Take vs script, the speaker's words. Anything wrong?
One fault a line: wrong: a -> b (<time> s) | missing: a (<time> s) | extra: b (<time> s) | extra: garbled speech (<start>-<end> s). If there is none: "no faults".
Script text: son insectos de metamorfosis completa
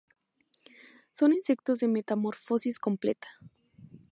no faults